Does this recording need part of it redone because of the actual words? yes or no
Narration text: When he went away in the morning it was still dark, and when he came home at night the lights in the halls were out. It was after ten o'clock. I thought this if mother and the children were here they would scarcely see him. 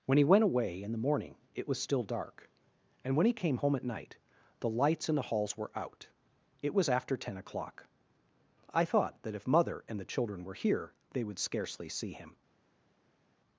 yes